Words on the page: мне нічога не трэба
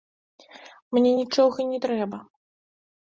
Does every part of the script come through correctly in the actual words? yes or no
yes